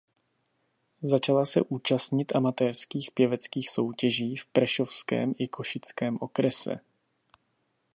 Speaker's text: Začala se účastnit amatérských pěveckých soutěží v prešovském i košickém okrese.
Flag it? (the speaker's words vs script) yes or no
no